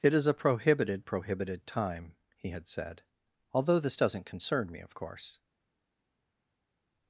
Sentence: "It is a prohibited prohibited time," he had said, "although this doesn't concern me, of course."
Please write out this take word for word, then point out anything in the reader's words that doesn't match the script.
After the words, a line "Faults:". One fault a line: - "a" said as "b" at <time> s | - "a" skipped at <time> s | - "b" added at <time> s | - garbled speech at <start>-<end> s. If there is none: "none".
"It is a prohibited prohibited time," he had said, "although this doesn't concern me, of course."
Faults:
none